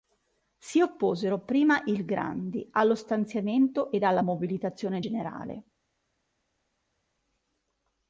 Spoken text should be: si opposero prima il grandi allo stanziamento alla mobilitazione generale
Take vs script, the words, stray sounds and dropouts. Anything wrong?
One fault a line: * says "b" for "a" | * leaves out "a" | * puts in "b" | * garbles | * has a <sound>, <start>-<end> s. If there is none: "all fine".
* puts in "ed"